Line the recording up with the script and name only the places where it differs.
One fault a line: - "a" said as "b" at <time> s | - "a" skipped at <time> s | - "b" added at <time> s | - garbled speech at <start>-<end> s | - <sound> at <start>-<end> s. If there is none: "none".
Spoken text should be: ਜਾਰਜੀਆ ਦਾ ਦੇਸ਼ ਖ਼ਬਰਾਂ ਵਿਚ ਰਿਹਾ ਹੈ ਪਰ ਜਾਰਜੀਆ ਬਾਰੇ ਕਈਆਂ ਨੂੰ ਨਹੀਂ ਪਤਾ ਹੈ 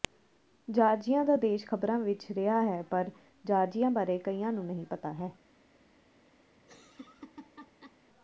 - laugh at 6.6-8.0 s